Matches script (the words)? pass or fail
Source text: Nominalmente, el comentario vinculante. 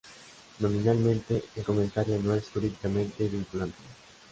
fail